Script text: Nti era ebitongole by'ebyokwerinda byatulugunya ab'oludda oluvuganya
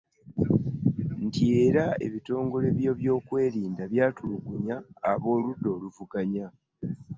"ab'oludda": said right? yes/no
yes